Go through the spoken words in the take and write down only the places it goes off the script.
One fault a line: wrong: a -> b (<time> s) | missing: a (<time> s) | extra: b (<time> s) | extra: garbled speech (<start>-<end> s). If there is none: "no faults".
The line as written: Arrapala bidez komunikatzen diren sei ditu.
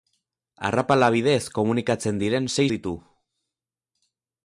no faults